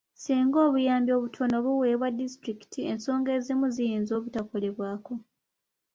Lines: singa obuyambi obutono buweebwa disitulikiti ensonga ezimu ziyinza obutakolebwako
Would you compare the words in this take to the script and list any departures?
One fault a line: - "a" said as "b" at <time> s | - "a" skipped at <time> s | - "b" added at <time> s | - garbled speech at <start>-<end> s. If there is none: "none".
none